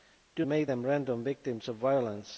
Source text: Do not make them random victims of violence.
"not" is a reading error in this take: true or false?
true